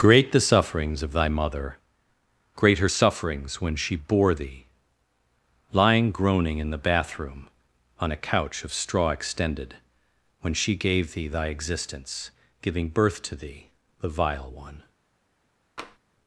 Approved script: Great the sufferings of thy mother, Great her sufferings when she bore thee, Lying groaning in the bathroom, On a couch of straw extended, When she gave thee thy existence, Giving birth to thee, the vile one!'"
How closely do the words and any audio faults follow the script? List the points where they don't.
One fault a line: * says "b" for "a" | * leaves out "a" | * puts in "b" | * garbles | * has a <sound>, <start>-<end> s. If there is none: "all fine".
* has a tap, 15.8-16.0 s